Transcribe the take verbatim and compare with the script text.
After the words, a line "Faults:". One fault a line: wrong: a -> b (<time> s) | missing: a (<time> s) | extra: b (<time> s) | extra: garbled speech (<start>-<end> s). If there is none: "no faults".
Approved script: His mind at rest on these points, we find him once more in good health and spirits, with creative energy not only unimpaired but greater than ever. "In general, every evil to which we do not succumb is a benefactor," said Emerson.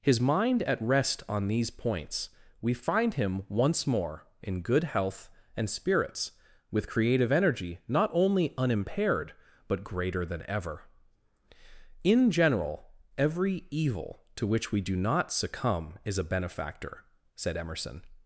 His mind at rest on these points, we find him once more in good health and spirits, with creative energy not only unimpaired but greater than ever. "In general, every evil to which we do not succumb is a benefactor," said Emerson.
Faults:
no faults